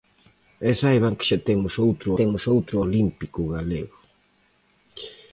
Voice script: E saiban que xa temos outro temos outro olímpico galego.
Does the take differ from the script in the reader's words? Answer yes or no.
no